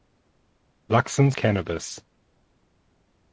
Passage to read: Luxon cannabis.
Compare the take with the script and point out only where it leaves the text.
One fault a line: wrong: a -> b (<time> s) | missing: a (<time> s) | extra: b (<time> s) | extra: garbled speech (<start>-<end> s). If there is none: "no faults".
no faults